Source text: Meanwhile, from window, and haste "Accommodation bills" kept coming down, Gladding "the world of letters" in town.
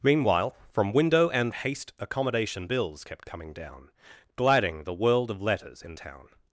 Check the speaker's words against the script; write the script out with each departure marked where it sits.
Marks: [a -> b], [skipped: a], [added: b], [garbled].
Meanwhile, from window, and haste "Accommodation bills" kept coming down, Gladding "the world of letters" in town.